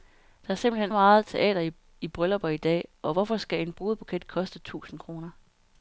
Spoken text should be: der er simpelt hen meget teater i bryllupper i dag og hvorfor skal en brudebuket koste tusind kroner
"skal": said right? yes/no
yes